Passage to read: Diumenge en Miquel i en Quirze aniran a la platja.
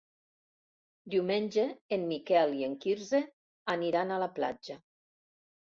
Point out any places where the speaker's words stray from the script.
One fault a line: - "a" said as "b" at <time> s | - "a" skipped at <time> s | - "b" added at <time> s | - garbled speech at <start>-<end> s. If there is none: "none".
none